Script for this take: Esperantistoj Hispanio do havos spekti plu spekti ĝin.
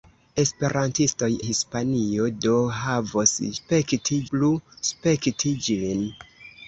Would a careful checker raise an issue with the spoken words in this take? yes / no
no